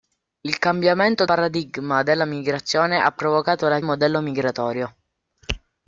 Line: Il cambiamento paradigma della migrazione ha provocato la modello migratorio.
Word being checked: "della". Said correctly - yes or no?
yes